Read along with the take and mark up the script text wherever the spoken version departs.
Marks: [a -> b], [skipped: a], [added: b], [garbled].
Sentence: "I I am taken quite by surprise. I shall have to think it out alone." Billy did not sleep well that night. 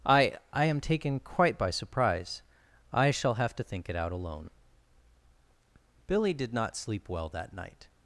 "I I am taken quite by surprise. I shall have to think it out alone." Billy did not sleep well that night.